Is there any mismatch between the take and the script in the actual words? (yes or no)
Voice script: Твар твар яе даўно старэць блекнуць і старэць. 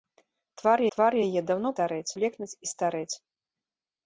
no